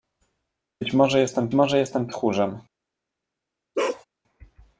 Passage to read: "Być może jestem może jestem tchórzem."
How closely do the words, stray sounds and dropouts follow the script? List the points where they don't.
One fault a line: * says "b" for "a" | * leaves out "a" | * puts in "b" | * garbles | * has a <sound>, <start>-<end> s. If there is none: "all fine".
* has a bark, 3.7-4.0 s